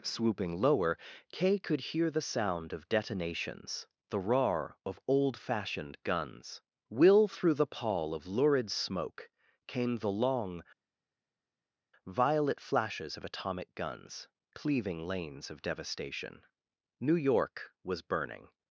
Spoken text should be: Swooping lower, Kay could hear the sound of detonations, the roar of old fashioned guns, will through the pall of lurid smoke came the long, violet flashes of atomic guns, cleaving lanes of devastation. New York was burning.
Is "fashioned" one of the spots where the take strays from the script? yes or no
no